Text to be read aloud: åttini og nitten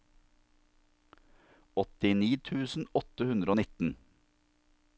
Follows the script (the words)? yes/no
no